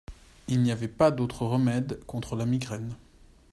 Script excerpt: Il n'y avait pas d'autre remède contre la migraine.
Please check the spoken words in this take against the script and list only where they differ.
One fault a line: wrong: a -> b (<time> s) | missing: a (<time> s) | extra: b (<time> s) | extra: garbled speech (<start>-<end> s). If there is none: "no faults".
no faults